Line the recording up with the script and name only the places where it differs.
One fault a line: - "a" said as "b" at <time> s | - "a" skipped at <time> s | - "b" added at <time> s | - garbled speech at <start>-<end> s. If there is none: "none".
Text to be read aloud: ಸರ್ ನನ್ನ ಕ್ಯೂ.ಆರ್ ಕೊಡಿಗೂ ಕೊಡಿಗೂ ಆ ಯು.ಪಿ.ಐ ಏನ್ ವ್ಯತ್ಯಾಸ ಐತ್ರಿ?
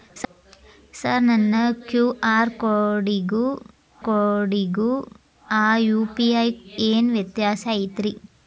none